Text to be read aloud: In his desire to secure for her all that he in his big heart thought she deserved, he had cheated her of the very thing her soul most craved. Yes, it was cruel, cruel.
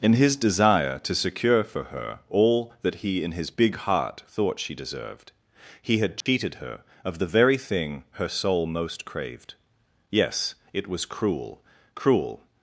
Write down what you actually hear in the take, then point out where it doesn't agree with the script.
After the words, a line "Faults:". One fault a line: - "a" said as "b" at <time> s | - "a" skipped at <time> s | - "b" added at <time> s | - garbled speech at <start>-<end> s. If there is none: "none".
In his desire to secure for her all that he in his big heart thought she deserved, he had cheated her of the very thing her soul most craved. Yes, it was cruel, cruel.
Faults:
none